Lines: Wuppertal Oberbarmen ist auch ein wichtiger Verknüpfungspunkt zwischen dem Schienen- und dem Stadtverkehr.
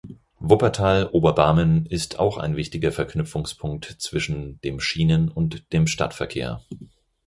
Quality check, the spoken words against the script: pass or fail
pass